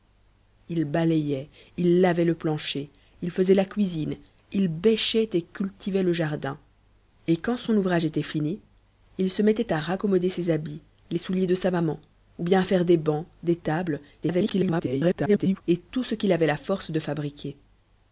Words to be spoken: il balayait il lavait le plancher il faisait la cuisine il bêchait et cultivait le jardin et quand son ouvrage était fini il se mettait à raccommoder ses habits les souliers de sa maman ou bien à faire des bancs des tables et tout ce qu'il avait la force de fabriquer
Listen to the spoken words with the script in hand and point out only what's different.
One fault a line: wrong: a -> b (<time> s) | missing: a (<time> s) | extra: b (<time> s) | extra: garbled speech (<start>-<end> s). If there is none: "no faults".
extra: garbled speech (14.2-15.6 s)